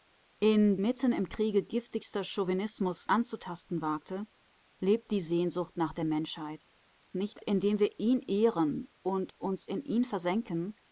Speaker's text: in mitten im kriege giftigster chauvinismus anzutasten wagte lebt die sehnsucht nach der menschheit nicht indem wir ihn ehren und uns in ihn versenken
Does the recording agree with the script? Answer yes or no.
yes